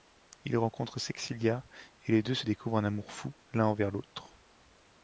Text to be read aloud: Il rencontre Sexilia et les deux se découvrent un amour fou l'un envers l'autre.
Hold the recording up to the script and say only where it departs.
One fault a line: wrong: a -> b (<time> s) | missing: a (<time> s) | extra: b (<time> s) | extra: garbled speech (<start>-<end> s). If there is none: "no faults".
no faults